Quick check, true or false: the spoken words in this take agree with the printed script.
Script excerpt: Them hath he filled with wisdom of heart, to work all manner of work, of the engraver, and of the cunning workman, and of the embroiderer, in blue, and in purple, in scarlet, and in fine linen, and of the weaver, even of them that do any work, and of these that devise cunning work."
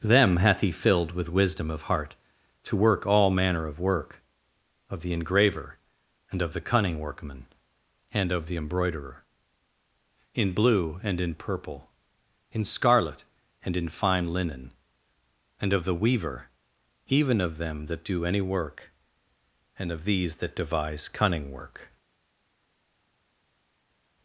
true